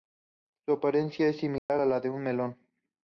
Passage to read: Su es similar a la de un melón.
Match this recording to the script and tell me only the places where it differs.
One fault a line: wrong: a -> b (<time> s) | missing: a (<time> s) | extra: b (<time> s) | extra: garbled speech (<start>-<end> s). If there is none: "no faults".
extra: apariencia (0.7 s)